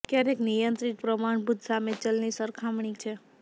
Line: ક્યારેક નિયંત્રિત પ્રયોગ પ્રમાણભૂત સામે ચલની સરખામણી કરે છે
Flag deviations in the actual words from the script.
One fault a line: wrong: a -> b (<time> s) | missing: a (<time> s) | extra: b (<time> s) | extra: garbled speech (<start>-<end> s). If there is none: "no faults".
missing: પ્રયોગ (1.0 s)
missing: કરે (3.0 s)